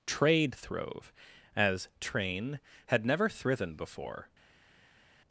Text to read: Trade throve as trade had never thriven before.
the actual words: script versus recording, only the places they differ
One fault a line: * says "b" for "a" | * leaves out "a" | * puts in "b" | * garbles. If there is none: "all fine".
* says "train" for "trade"